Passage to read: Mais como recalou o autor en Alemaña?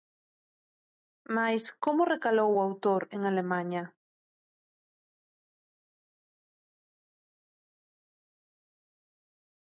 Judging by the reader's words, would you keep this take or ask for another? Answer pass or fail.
pass